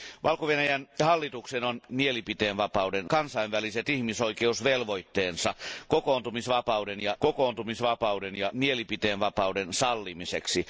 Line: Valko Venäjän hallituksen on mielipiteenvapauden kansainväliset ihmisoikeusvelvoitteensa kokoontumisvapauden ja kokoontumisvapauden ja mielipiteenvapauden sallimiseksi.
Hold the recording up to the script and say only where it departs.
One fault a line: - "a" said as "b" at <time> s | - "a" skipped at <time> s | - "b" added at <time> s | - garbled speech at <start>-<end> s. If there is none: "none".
none